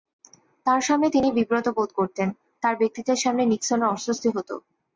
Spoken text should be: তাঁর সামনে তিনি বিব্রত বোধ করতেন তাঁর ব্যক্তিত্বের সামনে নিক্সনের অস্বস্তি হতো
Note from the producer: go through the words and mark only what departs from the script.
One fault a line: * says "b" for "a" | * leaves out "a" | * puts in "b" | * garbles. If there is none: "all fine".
all fine